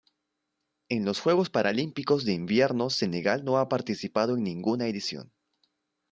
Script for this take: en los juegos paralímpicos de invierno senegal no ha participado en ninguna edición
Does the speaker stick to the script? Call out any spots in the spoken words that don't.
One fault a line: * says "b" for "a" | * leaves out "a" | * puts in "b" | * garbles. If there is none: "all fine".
all fine